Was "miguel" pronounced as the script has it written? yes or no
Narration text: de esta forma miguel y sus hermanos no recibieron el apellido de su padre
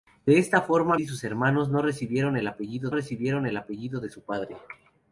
no